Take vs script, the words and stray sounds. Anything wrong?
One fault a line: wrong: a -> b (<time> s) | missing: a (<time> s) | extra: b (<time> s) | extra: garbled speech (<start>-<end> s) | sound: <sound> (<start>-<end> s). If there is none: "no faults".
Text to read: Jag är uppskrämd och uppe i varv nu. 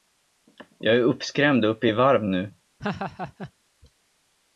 sound: laugh (2.8-3.5 s)